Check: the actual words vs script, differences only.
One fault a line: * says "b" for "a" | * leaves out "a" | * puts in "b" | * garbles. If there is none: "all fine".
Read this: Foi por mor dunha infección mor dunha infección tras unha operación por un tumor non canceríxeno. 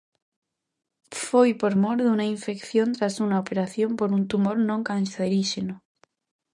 * leaves out "mor dunha infección"